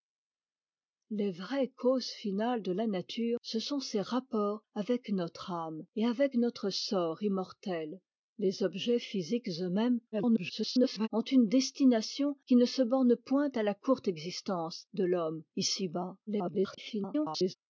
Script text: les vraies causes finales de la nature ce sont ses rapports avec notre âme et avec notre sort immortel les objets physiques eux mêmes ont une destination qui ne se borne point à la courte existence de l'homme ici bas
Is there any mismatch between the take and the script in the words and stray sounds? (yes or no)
yes